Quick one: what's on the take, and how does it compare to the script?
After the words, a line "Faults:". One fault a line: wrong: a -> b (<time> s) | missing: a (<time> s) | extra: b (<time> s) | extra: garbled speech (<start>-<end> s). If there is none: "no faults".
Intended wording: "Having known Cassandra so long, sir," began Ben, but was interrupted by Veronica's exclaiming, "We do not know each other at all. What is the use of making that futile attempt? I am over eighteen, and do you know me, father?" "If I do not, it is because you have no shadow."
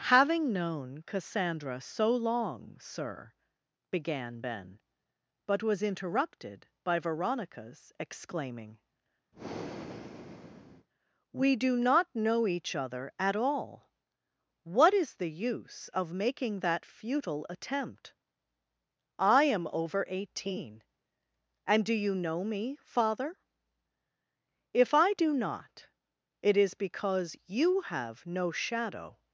"Having known Cassandra so long, sir," began Ben, but was interrupted by Veronica's exclaiming, "We do not know each other at all. What is the use of making that futile attempt? I am over eighteen, and do you know me, father?" "If I do not, it is because you have no shadow."
Faults:
no faults